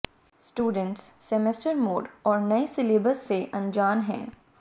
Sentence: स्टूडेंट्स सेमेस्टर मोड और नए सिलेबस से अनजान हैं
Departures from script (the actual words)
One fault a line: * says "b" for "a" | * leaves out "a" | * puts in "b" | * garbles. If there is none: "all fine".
all fine